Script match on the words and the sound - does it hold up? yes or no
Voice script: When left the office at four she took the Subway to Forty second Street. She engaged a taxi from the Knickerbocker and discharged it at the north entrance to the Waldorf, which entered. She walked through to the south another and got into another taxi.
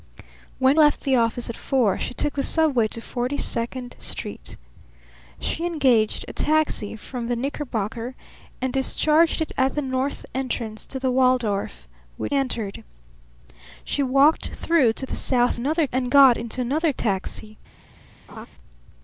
no